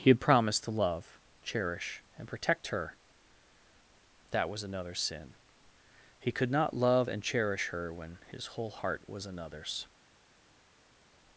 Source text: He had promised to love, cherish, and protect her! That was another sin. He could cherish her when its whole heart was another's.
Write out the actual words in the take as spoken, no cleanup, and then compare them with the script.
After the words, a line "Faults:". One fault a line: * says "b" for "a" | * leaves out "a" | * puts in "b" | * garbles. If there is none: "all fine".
He had promised to love, cherish, and protect her! That was another sin. He could not love and cherish her when his whole heart was another's.
Faults:
* puts in "not love and"
* says "his" for "its"